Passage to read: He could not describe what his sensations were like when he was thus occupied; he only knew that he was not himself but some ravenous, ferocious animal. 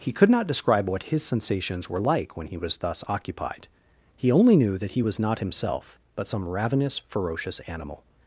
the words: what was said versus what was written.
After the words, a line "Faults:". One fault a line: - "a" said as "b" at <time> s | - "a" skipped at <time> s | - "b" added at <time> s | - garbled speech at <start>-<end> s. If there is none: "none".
He could not describe what his sensations were like when he was thus occupied; he only knew that he was not himself but some ravenous, ferocious animal.
Faults:
none